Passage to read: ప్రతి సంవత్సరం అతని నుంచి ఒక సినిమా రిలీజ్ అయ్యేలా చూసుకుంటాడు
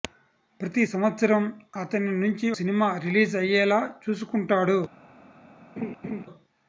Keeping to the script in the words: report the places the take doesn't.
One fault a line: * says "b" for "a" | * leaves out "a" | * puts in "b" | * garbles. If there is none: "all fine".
* leaves out "ఒక"